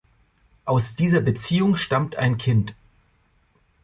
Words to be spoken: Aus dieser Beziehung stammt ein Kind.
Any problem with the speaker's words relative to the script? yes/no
no